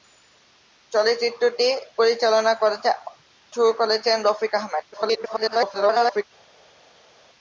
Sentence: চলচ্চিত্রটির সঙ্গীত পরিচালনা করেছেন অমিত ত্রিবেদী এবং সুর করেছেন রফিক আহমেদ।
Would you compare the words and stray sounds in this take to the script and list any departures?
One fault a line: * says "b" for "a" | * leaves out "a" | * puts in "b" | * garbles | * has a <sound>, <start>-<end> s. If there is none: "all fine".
* leaves out "সঙ্গীত"
* leaves out "অমিত ত্রিবেদী এবং"
* garbles